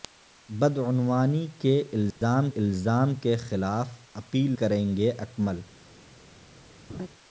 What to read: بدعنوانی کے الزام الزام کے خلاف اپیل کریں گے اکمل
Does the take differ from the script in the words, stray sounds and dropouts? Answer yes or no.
yes